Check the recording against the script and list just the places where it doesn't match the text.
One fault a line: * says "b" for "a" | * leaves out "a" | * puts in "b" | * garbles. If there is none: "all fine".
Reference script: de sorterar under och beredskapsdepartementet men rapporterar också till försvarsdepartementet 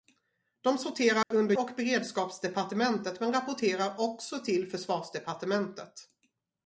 all fine